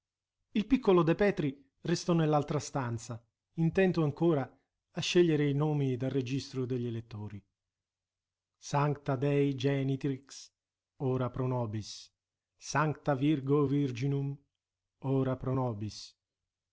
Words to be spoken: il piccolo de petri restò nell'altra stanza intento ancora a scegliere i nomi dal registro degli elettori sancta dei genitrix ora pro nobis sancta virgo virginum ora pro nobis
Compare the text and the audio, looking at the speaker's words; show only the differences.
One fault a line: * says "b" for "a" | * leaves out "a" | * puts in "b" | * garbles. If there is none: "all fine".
all fine